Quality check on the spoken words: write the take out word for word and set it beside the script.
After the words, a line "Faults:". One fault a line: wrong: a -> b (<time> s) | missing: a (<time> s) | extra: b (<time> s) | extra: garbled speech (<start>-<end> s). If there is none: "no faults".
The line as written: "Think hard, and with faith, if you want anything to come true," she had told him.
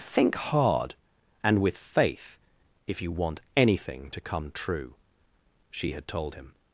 "Think hard, and with faith, if you want anything to come true," she had told him.
Faults:
no faults